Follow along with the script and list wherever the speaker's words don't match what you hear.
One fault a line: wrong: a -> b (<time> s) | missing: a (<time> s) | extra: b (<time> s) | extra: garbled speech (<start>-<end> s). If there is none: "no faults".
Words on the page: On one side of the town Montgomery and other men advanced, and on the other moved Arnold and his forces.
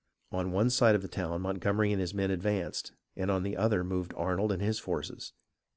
wrong: other -> his (2.0 s)